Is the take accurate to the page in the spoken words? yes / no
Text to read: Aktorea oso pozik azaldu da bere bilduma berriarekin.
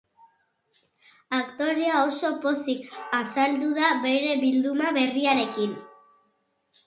yes